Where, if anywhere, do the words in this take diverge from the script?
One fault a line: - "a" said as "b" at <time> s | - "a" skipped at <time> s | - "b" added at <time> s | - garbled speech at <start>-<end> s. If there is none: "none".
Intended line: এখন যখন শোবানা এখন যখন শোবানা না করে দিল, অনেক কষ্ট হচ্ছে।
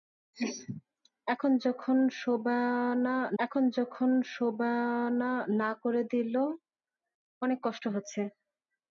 none